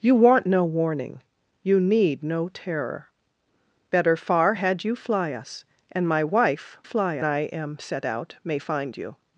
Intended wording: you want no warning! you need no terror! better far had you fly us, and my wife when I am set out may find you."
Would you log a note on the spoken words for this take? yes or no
yes